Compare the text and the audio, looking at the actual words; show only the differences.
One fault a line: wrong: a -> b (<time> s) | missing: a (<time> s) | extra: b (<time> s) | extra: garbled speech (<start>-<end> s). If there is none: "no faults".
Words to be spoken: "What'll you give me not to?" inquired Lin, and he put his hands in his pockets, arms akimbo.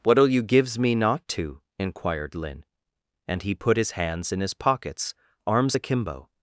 wrong: give -> gives (0.4 s)